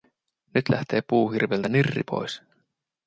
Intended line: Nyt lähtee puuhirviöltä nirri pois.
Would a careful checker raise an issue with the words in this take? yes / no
no